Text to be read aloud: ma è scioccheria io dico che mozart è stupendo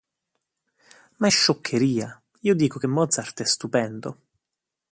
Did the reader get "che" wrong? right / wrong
right